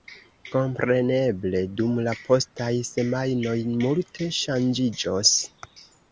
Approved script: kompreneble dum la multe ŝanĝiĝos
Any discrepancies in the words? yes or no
yes